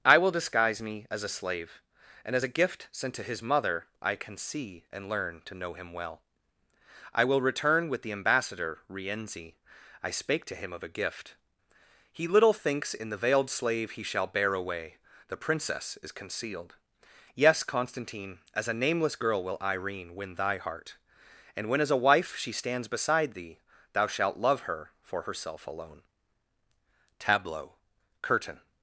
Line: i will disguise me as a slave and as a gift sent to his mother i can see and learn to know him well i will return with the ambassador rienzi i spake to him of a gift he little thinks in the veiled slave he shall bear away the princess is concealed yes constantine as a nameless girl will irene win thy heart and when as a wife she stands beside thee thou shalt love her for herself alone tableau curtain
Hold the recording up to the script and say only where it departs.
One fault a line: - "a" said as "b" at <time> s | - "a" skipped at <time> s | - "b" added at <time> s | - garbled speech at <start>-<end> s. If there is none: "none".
none